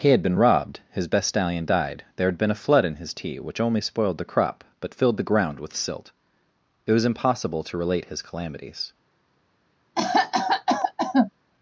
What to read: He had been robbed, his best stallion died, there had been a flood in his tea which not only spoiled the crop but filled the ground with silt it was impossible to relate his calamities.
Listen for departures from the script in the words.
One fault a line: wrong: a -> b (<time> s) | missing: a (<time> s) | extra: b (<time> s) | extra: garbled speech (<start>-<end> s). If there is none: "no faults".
missing: not (3.6 s)